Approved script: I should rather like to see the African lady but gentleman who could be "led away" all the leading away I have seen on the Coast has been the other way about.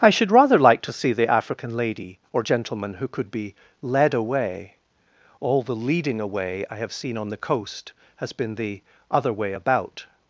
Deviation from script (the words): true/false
true